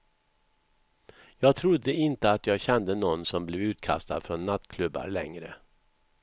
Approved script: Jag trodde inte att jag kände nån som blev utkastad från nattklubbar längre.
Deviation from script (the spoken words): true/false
false